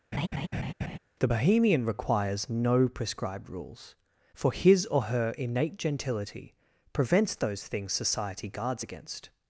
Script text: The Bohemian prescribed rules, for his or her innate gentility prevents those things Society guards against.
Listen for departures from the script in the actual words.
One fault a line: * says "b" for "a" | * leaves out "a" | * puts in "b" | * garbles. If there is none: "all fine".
* puts in "requires no"